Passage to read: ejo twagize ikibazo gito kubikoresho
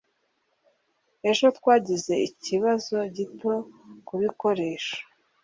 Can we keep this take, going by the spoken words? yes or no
yes